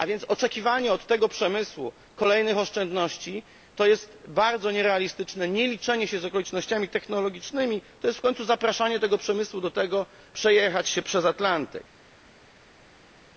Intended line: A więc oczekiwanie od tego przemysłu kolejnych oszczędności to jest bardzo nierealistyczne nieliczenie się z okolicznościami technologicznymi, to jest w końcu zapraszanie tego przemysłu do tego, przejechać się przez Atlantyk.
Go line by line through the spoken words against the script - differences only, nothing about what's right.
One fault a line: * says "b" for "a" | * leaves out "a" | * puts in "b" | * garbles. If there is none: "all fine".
all fine